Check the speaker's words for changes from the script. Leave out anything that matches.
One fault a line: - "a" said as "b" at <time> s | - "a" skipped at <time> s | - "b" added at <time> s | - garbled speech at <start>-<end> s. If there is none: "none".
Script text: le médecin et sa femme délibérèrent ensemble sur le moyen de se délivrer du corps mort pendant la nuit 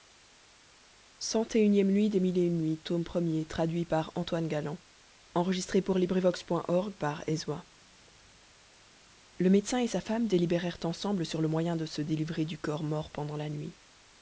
none